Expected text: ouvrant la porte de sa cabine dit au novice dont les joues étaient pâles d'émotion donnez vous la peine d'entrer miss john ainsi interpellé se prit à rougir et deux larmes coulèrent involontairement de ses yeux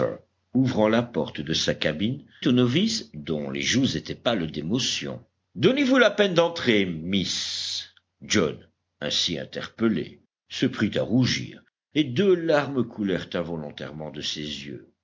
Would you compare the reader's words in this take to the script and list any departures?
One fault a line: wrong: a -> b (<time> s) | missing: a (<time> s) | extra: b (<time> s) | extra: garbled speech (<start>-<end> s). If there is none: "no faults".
missing: dit (2.2 s)